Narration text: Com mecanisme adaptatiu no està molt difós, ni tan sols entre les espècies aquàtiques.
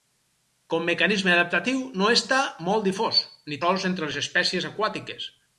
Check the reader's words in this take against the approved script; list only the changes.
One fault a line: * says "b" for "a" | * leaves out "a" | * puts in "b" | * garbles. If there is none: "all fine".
* leaves out "tan"